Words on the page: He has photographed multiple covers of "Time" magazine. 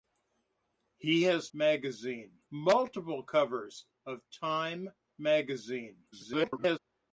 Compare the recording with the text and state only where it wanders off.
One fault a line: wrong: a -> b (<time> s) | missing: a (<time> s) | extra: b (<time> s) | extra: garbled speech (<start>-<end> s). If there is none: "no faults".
wrong: photographed -> magazine (1.5 s)
extra: garbled speech (6.1-6.8 s)